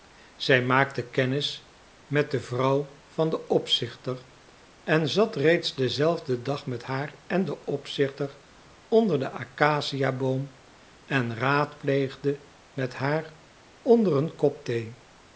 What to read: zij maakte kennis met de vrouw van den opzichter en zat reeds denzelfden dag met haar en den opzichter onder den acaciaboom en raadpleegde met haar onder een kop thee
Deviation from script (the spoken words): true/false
false